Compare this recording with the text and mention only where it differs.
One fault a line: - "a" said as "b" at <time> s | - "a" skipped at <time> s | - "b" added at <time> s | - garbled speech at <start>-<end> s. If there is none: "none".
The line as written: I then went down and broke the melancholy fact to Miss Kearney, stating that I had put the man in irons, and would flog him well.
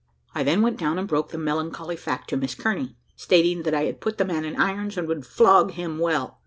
none